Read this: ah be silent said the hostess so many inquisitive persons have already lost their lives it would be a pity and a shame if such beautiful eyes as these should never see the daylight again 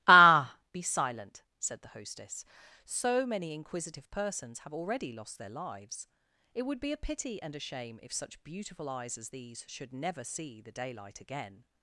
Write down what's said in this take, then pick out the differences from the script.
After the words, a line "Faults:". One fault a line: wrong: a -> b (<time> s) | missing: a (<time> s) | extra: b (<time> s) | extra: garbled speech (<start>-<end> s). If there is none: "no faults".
ah be silent said the hostess so many inquisitive persons have already lost their lives it would be a pity and a shame if such beautiful eyes as these should never see the daylight again
Faults:
no faults